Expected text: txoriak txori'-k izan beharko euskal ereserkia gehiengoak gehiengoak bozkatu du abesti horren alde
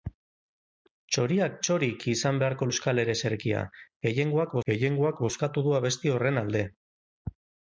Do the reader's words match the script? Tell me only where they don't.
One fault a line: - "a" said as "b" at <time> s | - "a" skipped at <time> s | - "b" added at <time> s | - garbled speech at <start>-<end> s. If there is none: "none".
none